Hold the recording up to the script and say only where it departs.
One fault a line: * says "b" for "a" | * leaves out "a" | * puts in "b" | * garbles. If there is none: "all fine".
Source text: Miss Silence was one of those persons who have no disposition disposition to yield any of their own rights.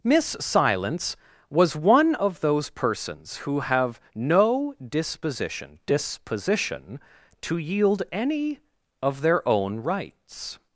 all fine